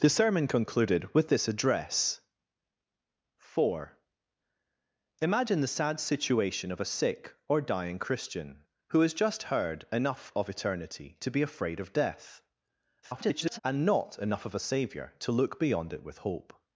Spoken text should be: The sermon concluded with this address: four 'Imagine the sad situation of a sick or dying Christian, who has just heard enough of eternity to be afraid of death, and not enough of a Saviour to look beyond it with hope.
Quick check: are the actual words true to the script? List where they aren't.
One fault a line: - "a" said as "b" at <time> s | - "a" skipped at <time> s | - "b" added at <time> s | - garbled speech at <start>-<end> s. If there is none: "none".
- garbled speech at 13.0-13.6 s